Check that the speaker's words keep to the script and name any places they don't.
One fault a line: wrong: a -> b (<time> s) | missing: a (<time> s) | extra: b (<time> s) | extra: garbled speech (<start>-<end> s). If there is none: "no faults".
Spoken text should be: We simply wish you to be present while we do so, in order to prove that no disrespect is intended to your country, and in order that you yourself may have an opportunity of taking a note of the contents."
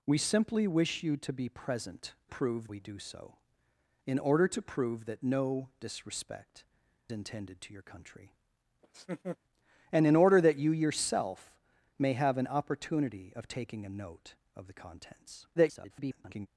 wrong: while -> prove (2.3 s)
missing: is (6.6 s)
extra: garbled speech (15.6-16.5 s)